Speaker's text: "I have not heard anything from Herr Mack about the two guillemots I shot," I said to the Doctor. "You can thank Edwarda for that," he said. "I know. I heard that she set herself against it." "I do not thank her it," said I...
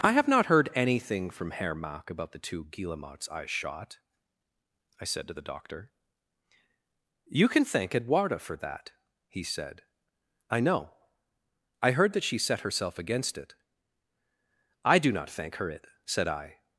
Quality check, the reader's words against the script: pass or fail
pass